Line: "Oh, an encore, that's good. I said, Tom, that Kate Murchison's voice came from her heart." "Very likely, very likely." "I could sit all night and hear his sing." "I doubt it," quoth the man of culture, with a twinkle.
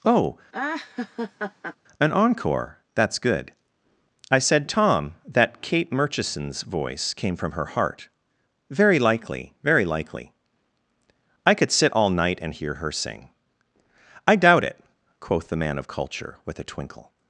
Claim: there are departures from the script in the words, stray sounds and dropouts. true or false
true